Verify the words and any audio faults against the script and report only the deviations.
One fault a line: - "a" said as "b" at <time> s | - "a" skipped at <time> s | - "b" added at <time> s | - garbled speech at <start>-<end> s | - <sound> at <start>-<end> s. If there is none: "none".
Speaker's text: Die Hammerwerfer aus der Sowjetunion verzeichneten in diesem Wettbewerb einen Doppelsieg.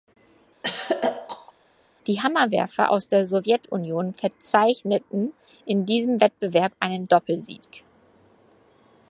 - throat clearing at 0.6-1.5 s